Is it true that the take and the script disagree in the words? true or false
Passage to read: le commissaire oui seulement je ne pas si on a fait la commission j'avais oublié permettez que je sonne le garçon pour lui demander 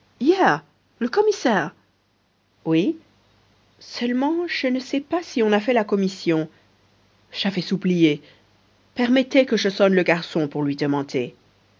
true